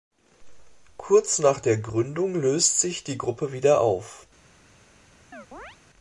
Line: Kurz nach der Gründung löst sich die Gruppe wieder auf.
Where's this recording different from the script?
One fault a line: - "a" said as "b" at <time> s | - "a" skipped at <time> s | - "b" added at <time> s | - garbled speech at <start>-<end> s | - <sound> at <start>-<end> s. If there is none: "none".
- chirp at 5.3-5.8 s